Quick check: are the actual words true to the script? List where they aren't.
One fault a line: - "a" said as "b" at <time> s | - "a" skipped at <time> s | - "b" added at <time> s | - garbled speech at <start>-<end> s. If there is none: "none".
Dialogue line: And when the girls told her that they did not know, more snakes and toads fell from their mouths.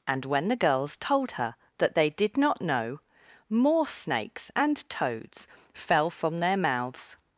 none